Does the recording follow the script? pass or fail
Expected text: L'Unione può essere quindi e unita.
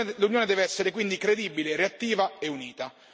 fail